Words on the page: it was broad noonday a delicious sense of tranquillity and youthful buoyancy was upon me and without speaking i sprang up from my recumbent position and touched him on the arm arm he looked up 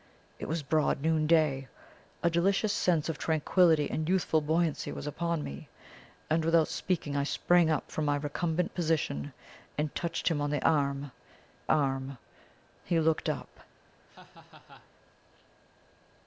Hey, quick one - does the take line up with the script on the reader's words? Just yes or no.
yes